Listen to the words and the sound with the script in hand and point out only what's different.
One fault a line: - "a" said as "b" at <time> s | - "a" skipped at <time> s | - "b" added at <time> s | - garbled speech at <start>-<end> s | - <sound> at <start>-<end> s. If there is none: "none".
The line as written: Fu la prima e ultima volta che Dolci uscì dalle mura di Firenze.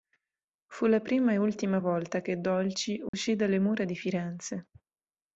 - dropout at 3.1-3.1 s